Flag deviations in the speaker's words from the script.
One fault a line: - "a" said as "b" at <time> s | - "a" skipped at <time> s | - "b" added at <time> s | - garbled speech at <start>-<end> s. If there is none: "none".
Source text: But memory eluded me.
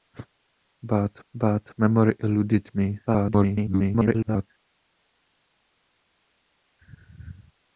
- "but" added at 1.3 s
- garbled speech at 3.1-4.5 s